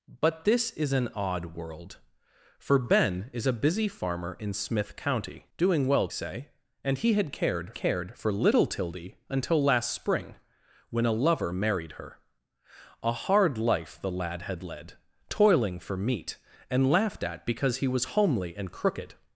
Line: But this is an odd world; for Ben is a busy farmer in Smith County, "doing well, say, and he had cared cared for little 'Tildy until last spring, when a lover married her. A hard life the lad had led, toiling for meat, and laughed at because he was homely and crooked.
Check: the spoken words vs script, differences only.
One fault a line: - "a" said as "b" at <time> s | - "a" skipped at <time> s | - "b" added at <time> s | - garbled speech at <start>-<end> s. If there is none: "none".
none